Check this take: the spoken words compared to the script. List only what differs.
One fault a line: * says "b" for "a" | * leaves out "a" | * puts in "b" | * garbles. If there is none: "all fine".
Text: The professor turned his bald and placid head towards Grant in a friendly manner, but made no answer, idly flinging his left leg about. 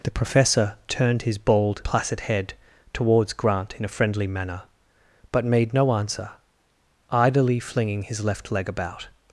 * leaves out "and"